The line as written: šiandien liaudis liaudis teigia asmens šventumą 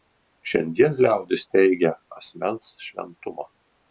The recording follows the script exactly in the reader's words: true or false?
false